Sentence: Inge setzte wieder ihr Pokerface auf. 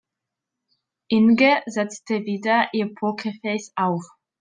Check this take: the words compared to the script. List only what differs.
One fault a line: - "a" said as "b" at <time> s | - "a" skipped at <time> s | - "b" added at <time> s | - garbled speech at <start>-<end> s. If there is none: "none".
none